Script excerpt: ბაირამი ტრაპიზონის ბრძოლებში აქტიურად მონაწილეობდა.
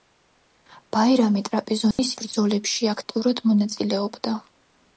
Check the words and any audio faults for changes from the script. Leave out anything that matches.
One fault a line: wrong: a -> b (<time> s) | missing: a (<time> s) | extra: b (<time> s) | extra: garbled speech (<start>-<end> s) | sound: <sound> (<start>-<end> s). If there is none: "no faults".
sound: dropout (1.9-2.0 s)